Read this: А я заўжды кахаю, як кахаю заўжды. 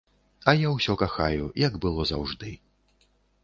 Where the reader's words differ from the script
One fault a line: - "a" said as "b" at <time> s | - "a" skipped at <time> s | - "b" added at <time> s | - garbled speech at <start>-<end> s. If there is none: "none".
- "заўжды" said as "ўсё" at 0.8 s
- "кахаю" said as "было" at 1.9 s